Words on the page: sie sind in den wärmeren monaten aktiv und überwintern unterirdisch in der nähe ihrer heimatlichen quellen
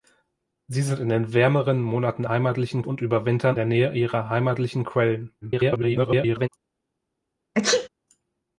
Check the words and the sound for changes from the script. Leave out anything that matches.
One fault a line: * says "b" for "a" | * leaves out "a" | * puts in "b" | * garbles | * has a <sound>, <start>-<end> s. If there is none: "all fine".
* says "heimatlichen" for "aktiv"
* leaves out "unterirdisch in"
* garbles
* has a sneeze, 7.5-7.9 s